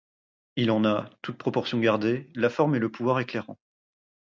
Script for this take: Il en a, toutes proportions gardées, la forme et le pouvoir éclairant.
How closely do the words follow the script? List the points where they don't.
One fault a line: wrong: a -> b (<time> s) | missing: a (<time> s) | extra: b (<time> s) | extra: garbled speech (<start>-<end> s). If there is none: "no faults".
no faults